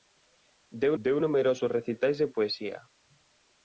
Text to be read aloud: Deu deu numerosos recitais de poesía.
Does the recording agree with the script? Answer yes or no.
yes